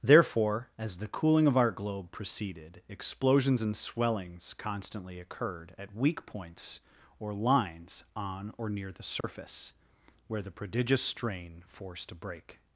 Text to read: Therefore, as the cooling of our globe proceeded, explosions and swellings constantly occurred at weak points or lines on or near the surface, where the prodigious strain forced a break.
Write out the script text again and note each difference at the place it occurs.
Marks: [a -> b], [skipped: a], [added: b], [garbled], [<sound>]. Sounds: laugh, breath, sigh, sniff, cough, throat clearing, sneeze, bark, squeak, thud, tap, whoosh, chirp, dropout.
Therefore, as the cooling of our globe proceeded, explosions and swellings constantly occurred at weak points or lines on or near the surface, [dropout] where the prodigious strain forced a break.